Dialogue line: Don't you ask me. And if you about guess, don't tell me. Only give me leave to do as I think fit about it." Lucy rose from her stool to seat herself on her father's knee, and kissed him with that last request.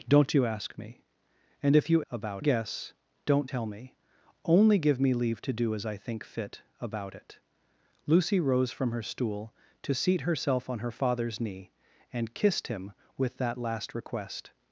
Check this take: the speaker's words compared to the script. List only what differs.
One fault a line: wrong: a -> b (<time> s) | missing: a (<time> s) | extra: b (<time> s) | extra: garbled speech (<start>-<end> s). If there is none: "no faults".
no faults